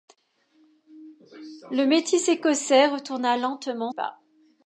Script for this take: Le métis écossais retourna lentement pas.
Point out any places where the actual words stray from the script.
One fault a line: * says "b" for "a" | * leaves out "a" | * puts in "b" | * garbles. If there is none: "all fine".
all fine